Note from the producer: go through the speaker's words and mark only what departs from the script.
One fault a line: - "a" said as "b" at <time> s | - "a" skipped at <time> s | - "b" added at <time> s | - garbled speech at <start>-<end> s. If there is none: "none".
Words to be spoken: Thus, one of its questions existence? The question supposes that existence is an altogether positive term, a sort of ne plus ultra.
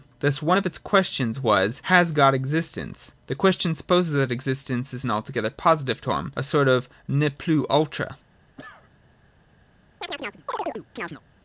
- "was Has God" added at 1.4 s